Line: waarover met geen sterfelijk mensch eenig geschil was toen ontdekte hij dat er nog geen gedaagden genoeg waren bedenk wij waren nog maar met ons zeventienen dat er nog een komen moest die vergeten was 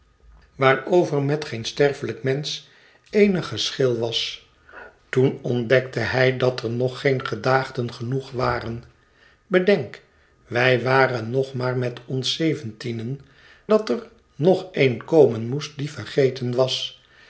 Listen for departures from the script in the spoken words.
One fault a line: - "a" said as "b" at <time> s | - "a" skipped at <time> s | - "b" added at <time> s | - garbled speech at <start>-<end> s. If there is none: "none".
none